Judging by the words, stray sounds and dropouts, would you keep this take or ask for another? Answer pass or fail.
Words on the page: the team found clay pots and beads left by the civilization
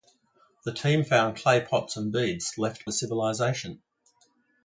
fail